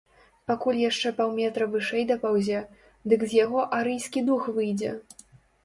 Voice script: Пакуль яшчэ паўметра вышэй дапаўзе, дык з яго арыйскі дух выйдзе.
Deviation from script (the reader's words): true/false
false